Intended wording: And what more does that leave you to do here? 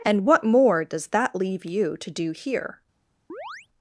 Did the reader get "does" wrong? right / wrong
right